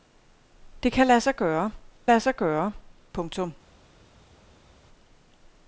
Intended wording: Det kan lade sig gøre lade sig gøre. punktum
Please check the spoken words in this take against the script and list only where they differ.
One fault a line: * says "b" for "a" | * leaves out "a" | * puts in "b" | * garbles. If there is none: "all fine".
all fine